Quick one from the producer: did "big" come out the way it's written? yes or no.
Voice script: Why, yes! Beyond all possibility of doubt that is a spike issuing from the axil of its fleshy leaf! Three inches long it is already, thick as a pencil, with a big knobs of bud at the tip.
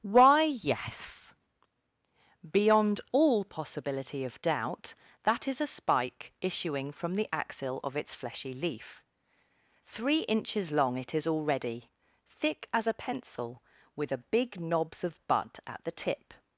yes